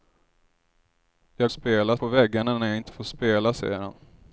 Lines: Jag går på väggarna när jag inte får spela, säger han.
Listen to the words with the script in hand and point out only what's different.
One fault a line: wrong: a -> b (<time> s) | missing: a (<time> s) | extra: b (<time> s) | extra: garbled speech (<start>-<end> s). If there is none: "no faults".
wrong: går -> spela (1.5 s)